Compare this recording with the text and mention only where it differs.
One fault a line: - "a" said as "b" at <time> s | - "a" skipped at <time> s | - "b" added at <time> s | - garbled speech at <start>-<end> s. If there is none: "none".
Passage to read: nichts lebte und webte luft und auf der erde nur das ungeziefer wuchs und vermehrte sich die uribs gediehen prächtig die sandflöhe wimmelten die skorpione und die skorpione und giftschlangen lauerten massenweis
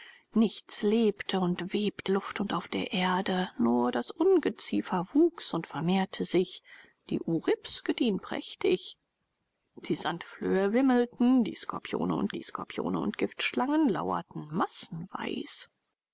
none